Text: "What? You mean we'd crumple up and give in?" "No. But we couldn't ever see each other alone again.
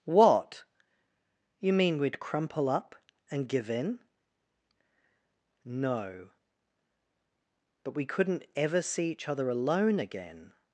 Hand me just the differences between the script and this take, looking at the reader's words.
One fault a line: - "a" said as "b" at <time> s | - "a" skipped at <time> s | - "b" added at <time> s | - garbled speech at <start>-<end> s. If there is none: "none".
none